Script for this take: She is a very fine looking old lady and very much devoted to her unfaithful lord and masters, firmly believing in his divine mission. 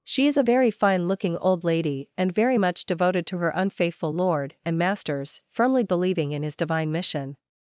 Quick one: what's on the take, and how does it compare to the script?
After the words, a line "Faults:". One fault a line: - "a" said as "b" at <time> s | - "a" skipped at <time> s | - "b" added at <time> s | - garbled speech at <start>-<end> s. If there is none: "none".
She is a very fine looking old lady and very much devoted to her unfaithful lord and masters, firmly believing in his divine mission.
Faults:
none